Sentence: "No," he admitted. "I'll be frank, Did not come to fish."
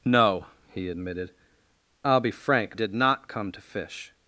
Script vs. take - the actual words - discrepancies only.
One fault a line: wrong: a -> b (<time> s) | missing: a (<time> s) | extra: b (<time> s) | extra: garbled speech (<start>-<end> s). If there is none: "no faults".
no faults